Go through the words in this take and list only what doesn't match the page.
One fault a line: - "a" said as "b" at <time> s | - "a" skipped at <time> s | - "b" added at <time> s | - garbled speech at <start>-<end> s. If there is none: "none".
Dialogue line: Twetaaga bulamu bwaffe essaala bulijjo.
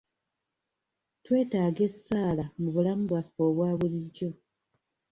- "essaala mu" added at 1.9 s
- "essaala" said as "obwa" at 3.5 s